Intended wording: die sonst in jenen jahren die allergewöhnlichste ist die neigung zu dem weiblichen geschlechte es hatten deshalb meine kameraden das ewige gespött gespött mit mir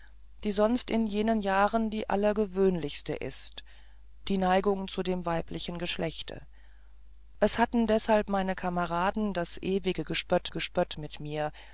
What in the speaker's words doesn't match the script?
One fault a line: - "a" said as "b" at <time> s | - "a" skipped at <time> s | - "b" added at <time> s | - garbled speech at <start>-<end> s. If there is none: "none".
none